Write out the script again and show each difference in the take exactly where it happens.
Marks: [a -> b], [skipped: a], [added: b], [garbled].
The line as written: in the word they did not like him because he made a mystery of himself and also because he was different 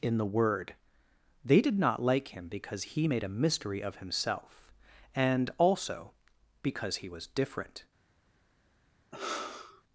in the word they did not like him because he made a mystery of himself and also because he was different